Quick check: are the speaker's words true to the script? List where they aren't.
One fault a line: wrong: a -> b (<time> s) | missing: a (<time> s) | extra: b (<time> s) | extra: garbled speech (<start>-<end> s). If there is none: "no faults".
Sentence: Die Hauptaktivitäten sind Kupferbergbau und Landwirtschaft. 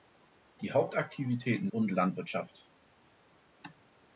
missing: sind Kupferbergbau (1.7 s)